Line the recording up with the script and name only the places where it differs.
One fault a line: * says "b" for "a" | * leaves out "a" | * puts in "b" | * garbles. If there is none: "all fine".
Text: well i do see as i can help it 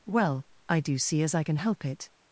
all fine